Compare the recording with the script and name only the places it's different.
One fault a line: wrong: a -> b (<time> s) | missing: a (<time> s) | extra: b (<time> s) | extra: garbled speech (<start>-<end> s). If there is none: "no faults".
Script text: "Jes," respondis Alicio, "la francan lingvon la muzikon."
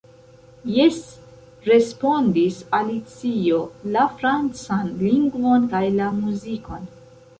extra: kaj (5.7 s)